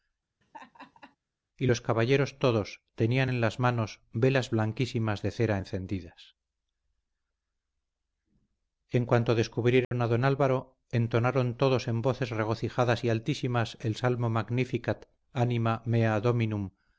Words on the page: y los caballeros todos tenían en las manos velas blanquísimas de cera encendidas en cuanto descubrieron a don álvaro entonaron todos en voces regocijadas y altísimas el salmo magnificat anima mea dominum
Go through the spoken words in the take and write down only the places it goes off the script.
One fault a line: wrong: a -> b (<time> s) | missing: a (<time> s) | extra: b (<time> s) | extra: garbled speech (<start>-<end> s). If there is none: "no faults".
no faults